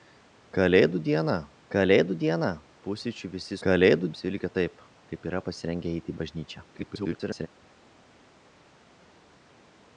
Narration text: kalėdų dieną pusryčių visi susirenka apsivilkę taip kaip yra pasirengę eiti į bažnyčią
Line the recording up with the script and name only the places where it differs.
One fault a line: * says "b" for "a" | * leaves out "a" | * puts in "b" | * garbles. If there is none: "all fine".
* puts in "kalėdų dieną"
* says "kalėdų" for "susirenka"
* garbles